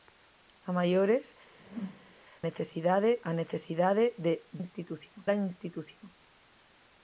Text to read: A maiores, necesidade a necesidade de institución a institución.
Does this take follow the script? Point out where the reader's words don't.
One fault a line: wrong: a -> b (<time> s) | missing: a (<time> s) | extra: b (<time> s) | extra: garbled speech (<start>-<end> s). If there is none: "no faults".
no faults